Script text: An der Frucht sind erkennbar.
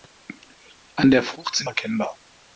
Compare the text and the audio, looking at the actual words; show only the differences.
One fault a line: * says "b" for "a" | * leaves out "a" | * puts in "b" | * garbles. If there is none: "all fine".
all fine